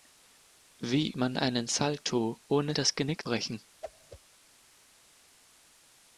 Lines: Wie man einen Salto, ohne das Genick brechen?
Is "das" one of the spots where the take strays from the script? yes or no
no